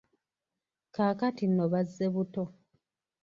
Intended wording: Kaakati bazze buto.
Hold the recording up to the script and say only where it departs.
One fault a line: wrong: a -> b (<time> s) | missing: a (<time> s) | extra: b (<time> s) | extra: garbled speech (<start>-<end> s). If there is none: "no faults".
extra: nno (1.5 s)